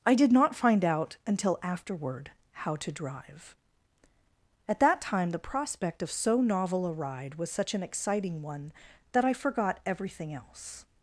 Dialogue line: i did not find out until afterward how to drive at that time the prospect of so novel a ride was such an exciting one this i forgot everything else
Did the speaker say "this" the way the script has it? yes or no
no